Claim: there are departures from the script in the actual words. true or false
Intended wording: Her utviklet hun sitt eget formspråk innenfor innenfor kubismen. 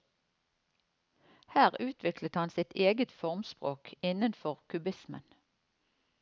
true